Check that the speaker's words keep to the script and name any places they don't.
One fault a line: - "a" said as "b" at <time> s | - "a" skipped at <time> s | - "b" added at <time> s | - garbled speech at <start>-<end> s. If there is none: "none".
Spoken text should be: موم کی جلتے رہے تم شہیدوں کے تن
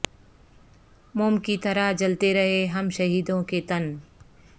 - "طرح" added at 1.6 s
- "تم" said as "ہم" at 2.6 s